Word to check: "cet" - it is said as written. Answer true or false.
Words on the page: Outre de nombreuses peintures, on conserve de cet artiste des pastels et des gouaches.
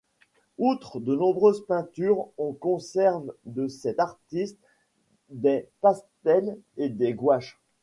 true